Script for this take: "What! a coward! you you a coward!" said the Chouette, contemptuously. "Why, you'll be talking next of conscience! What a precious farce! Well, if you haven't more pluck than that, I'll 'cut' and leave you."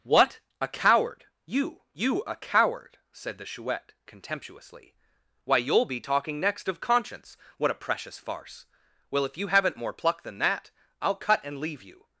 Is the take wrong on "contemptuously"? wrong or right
right